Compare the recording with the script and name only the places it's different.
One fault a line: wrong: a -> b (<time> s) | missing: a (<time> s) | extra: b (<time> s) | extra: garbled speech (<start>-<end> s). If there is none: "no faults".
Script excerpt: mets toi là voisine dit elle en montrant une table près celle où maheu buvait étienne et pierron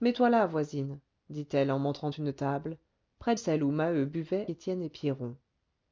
no faults